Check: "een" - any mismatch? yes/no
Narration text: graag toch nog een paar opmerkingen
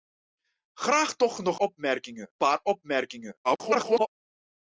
yes